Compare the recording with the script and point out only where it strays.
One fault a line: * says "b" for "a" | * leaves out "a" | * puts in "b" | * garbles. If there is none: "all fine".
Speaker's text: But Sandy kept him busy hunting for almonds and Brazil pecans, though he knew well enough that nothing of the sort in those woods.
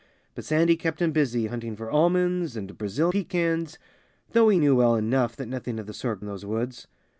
all fine